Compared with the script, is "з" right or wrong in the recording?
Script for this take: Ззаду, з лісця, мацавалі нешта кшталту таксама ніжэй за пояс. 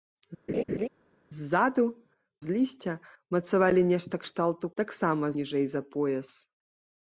right